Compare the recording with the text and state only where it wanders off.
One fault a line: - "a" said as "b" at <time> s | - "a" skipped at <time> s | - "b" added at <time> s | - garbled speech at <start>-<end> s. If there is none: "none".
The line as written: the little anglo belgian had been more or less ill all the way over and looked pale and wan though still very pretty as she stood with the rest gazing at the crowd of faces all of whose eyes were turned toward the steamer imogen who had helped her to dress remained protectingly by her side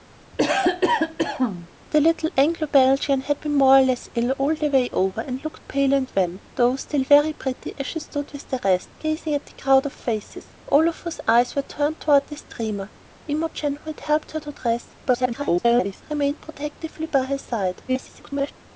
- garbled speech at 15.0-16.0 s
- garbled speech at 17.9-18.5 s